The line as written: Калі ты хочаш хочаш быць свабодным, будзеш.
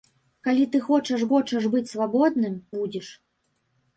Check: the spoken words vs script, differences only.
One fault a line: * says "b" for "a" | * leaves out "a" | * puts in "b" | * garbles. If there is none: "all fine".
all fine